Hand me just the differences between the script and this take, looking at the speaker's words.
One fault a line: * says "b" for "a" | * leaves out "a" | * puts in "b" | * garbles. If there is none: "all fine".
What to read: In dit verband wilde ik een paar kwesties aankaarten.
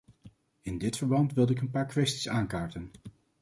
all fine